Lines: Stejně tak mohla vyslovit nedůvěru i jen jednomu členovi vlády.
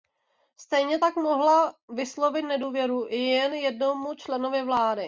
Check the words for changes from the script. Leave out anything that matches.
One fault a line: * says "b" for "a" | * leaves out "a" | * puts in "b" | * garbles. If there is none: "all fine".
all fine